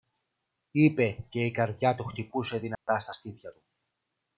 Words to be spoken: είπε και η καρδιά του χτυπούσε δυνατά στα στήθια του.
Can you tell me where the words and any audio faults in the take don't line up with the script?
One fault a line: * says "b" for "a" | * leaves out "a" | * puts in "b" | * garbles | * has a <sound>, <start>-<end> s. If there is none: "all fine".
* has a dropout, 2.7-2.9 s